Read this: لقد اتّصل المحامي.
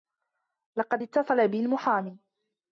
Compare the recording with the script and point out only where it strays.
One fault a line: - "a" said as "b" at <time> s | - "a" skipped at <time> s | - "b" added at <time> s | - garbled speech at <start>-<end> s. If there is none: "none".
- "بي" added at 1.5 s